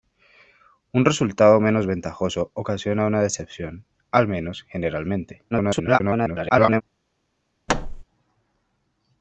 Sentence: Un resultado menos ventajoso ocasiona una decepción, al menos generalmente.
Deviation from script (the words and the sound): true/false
true